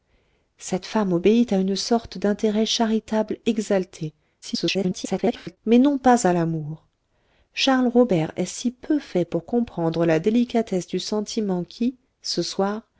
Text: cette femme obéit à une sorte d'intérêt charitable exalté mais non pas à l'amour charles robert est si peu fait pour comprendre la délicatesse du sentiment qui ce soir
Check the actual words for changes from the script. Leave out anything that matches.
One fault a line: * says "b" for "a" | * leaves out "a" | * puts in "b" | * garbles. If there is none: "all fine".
* garbles